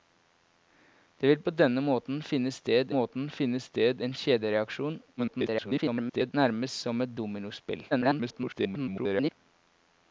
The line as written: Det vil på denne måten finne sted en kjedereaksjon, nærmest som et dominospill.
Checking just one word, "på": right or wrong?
right